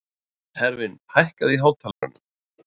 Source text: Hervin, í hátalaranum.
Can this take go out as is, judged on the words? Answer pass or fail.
fail